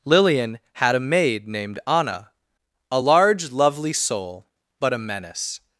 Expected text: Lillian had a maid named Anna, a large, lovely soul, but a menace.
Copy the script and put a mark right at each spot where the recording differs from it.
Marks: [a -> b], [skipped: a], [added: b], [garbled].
Lillian had a maid named Anna, a large, lovely soul, but a menace.